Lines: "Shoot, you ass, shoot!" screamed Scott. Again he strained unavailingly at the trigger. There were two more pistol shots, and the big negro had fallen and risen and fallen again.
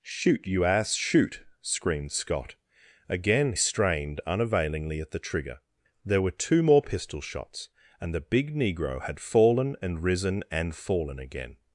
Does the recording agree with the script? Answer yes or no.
no